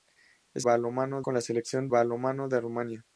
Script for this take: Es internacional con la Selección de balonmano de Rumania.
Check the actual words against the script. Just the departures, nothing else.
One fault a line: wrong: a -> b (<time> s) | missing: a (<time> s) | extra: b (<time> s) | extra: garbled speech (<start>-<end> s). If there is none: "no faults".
wrong: internacional -> balonmano (0.6 s)
missing: de (1.9 s)